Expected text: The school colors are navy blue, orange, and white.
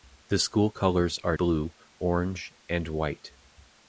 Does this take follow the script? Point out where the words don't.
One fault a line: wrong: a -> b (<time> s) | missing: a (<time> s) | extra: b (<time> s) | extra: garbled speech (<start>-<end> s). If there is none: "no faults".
missing: navy (1.4 s)